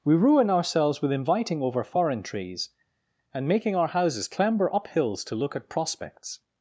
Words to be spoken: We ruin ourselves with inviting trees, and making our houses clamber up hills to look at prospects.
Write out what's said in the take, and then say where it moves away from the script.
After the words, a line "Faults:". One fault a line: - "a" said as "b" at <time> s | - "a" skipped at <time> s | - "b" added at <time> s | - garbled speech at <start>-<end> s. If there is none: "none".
We ruin ourselves with inviting over foreign trees, and making our houses clamber up hills to look at prospects.
Faults:
- "over foreign" added at 1.6 s